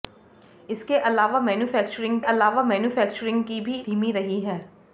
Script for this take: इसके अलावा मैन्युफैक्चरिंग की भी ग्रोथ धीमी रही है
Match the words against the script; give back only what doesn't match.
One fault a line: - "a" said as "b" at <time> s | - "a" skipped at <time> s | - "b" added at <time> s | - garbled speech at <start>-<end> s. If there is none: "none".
- "अलावा मैन्युफैक्चरिंग" added at 2.2 s
- "ग्रोथ" skipped at 3.8 s